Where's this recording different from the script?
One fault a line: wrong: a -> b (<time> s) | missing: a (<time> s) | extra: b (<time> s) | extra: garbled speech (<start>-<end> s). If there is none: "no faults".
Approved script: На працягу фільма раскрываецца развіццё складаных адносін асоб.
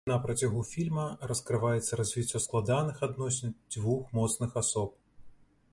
extra: дзвюх моцных (3.8 s)